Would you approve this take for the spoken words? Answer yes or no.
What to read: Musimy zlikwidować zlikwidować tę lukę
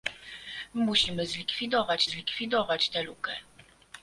yes